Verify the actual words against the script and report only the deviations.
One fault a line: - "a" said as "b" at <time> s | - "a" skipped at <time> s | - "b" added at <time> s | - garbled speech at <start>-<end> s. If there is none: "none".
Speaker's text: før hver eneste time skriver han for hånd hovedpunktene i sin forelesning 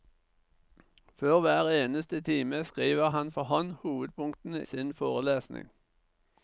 - "i" skipped at 4.7 s